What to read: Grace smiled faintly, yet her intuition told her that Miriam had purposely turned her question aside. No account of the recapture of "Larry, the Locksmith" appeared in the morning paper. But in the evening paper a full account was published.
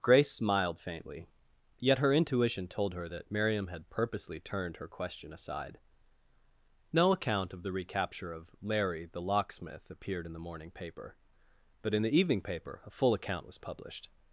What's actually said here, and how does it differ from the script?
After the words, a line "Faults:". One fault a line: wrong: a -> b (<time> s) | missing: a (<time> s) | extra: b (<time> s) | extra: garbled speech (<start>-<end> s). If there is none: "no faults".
Grace smiled faintly, yet her intuition told her that Miriam had purposely turned her question aside. No account of the recapture of "Larry, the Locksmith" appeared in the morning paper. But in the evening paper a full account was published.
Faults:
no faults